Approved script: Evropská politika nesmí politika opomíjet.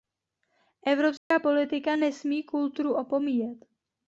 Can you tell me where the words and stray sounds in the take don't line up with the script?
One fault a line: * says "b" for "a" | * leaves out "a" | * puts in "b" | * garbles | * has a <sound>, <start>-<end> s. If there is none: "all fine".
* has a dropout, 1.2-1.3 s
* says "kulturu" for "politika"